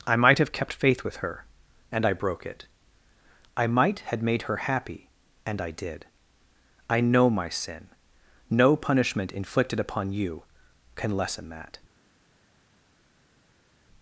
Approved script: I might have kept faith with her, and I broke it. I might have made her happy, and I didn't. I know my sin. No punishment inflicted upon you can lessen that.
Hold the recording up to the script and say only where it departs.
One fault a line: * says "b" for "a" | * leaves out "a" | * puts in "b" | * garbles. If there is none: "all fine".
* says "had" for "have"
* says "did" for "didn't"